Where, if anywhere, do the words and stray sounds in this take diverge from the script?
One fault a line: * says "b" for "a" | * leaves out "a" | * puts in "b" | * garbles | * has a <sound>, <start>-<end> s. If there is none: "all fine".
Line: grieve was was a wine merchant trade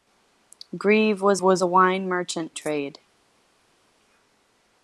all fine